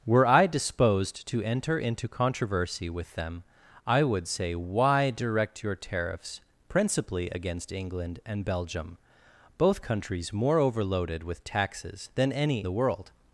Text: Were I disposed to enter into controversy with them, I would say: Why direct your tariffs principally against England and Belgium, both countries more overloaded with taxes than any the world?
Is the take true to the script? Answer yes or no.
yes